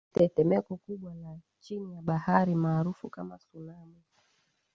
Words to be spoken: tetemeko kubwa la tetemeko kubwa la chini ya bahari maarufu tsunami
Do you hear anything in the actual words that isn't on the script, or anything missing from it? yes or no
yes